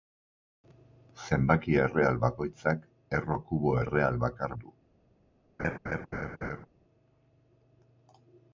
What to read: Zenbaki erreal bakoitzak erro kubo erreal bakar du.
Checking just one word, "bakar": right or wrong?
right